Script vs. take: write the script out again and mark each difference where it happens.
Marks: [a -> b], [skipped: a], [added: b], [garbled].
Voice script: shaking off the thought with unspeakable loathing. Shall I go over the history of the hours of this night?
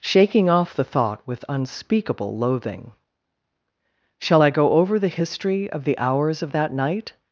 shaking off the thought with unspeakable loathing. Shall I go over the history of the hours of [this -> that] night?